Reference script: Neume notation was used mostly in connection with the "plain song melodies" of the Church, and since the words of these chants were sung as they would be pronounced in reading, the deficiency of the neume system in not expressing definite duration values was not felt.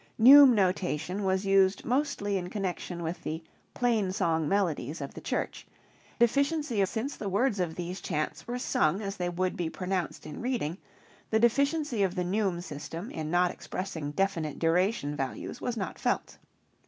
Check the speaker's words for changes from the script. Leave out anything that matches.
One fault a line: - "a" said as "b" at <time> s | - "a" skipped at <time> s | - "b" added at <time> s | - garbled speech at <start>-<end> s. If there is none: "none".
- "and" said as "deficiency" at 6.2 s